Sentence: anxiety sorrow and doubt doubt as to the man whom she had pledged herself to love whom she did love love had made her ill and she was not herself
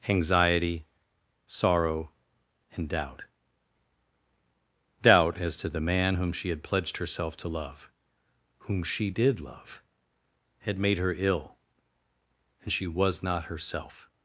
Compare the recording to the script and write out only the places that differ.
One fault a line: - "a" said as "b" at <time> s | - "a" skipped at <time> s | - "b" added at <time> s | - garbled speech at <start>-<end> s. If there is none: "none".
- "love" skipped at 9.8 s